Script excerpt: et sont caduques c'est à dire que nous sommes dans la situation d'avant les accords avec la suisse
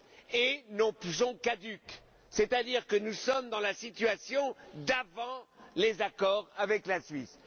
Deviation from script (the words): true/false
false